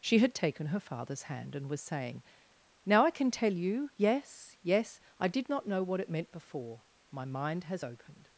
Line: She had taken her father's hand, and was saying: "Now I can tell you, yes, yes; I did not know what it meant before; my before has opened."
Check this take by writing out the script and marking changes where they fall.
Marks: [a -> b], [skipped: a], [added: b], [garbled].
She had taken her father's hand, and was saying: "Now I can tell you, yes, yes; I did not know what it meant before; my [before -> mind] has opened."